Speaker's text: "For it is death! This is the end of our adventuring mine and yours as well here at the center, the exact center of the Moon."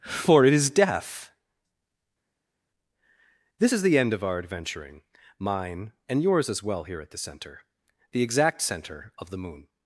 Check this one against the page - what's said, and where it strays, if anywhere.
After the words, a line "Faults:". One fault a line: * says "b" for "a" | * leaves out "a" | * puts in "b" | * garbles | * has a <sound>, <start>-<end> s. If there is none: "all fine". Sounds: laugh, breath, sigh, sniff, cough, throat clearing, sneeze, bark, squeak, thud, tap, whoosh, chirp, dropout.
"For it is death! This is the end of our adventuring mine and yours as well here at the center, the exact center of the Moon."
Faults:
all fine